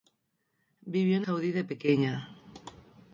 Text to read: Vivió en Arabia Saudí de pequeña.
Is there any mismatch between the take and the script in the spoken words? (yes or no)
yes